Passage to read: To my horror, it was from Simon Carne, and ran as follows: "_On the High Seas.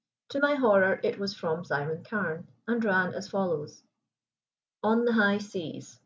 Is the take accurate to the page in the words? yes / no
yes